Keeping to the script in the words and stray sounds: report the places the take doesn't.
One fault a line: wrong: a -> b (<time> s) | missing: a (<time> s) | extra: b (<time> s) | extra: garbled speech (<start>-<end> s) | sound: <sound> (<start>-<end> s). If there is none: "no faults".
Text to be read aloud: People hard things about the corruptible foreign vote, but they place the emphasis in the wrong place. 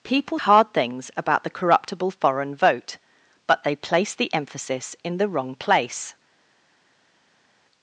no faults